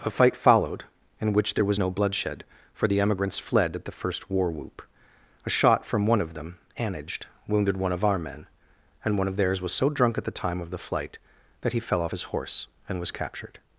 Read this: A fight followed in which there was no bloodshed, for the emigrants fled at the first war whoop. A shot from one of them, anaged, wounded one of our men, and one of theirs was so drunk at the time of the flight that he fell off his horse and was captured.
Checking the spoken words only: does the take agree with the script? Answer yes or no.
yes